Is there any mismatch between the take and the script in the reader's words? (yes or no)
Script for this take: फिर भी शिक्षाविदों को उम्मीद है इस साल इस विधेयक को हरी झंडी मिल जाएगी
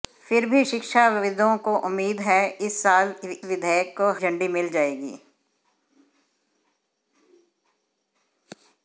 yes